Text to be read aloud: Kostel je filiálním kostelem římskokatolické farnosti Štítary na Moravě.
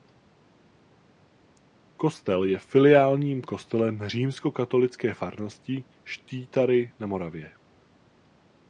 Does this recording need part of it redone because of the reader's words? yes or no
no